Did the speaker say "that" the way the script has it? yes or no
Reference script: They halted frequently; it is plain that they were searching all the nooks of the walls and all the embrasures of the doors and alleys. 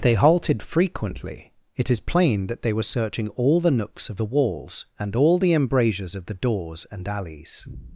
yes